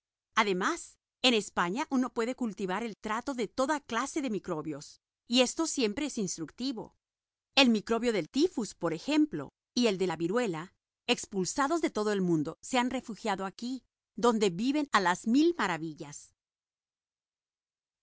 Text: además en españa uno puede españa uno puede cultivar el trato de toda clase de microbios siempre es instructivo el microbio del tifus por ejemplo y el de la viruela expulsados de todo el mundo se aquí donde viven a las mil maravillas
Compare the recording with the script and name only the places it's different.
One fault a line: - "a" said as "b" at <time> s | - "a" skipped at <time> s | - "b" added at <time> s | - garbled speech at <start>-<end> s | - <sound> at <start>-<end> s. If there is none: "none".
- "españa uno puede" skipped at 2.3 s
- "y esto" added at 5.3 s
- "han refugiado" added at 12.8 s